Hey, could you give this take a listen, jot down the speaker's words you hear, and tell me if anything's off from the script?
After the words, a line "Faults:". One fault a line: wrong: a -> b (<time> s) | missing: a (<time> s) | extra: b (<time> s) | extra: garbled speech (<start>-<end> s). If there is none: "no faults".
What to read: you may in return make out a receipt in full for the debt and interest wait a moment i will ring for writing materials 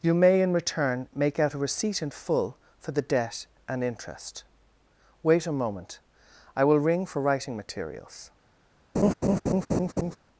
you may in return make out a receipt in full for the debt and interest wait a moment i will ring for writing materials
Faults:
no faults